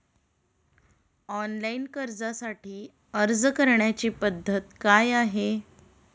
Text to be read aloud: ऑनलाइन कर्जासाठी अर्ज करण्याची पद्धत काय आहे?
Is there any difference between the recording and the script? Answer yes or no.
no